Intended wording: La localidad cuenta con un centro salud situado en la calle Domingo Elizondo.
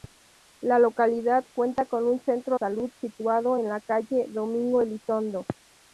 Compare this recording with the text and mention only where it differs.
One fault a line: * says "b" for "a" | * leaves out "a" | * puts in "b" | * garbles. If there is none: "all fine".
all fine